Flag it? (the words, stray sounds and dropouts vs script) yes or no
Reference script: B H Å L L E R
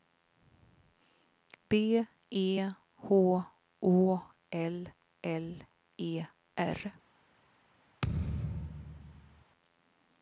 yes